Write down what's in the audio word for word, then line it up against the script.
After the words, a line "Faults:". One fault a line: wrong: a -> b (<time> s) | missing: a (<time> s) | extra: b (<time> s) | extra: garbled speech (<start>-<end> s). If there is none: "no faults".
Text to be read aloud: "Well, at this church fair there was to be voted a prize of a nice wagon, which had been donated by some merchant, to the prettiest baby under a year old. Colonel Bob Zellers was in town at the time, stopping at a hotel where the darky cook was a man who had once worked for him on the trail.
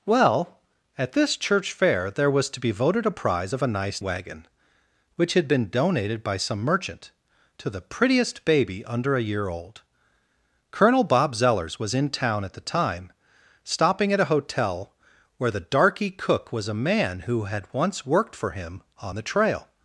"Well, at this church fair there was to be voted a prize of a nice wagon, which had been donated by some merchant, to the prettiest baby under a year old. Colonel Bob Zellers was in town at the time, stopping at a hotel where the darky cook was a man who had once worked for him on the trail.
Faults:
no faults